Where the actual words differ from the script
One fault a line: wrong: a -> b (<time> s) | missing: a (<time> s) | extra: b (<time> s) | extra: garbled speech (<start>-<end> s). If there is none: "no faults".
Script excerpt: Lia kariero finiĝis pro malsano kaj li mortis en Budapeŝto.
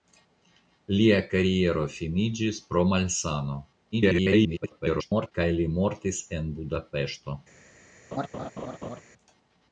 extra: garbled speech (3.9-5.3 s)